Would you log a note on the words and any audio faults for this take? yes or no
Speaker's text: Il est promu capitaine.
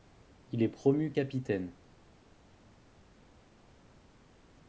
no